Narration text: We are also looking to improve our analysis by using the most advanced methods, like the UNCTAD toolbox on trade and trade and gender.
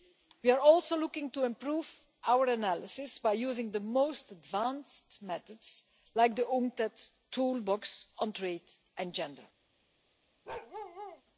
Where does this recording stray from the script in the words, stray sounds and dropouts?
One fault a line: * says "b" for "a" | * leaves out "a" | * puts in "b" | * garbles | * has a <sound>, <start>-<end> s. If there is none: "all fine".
* leaves out "trade and"
* has a bark, 10.5-11.2 s